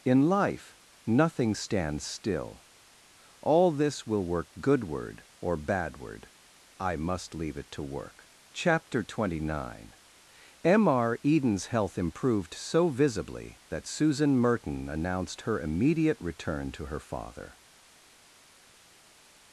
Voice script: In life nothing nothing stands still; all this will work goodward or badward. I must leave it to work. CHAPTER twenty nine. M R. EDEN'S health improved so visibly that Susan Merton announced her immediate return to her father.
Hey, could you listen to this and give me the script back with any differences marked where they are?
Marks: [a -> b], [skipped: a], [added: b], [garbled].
In life nothing [skipped: nothing] stands still; all this will work goodward or badward. I must leave it to work. CHAPTER twenty nine. M R. EDEN'S health improved so visibly that Susan Merton announced her immediate return to her father.